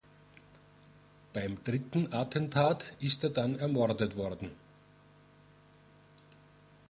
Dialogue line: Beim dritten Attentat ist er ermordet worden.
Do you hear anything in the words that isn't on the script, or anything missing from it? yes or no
yes